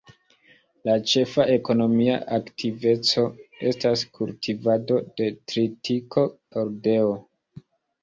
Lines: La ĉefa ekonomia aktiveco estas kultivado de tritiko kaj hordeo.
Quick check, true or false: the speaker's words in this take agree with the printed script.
false